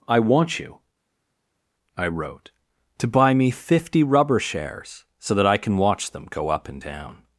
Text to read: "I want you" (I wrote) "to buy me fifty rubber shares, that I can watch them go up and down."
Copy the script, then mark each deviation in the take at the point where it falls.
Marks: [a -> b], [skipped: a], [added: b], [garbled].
"I want you" (I wrote) "to buy me fifty rubber shares, [added: so] that I can watch them go up and down."